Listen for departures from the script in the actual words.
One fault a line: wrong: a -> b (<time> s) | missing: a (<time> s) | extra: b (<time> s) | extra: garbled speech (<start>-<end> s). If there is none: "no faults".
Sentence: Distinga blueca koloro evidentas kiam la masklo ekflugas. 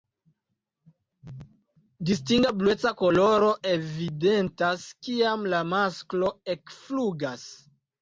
no faults